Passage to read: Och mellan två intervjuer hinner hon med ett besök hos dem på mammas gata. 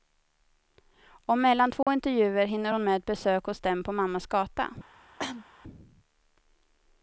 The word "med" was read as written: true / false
true